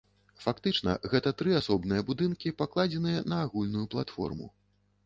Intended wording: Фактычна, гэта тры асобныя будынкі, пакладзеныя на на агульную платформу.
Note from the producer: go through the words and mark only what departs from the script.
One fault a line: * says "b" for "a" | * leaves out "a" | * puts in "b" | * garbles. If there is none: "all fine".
* leaves out "на"